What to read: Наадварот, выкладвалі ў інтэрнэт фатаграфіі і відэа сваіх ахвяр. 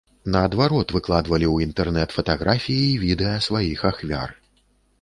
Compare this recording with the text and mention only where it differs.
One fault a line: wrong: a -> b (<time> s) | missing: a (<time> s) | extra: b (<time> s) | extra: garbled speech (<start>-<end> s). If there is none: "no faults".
no faults